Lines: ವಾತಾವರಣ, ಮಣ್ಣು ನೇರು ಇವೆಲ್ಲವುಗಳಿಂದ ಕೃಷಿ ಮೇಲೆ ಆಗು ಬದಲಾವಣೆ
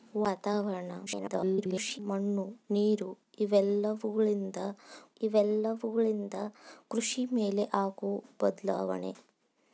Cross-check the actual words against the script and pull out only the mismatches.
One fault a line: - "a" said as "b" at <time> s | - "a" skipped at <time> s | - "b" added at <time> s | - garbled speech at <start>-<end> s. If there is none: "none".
- garbled speech at 1.1-2.0 s
- "ಇವೆಲ್ಲವುಗಳಿಂದ" added at 5.2 s